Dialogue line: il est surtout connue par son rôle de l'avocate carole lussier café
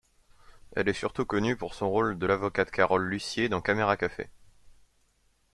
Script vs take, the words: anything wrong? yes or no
yes